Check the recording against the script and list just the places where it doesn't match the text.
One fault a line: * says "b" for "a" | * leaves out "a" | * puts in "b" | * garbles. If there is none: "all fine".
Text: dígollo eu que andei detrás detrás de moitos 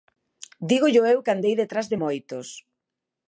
* leaves out "detrás"